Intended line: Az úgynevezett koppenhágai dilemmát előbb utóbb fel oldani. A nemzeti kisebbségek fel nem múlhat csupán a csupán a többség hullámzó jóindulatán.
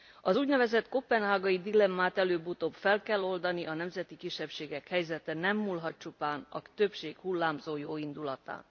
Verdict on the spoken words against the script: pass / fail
fail